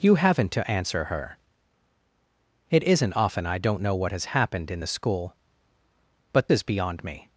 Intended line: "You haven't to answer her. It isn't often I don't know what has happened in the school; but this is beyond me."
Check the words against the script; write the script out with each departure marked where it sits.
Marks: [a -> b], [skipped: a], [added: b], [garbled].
"You haven't to answer her. It isn't often I don't know what has happened in the school; but [skipped: this] is beyond me."